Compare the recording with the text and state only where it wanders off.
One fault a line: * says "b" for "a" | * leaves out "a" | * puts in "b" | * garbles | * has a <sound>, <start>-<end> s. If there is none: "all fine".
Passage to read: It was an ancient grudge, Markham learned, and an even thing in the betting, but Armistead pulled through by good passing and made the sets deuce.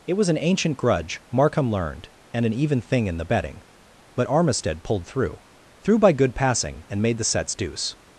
* puts in "through"